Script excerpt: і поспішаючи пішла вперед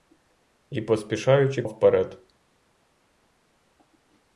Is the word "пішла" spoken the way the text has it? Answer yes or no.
no